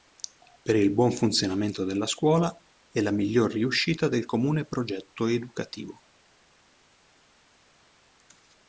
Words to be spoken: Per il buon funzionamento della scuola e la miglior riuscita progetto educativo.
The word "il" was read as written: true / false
true